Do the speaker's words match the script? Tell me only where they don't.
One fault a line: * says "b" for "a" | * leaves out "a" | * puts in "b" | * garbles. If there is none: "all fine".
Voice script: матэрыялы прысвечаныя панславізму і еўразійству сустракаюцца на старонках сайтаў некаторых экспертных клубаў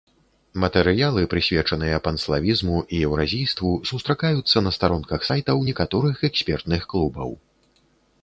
all fine